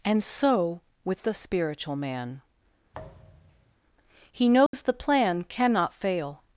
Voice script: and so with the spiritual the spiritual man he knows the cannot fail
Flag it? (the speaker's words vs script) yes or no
yes